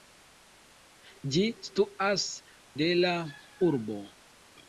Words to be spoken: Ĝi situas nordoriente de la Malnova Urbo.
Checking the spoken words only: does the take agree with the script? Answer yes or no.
no